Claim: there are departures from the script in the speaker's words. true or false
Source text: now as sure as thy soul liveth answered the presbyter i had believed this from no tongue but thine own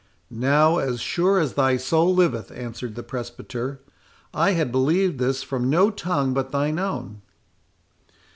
false